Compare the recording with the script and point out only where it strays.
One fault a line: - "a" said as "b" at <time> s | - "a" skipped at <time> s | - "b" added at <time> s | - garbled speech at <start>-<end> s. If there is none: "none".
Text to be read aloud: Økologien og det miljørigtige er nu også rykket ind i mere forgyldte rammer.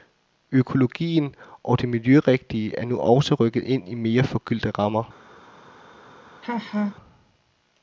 none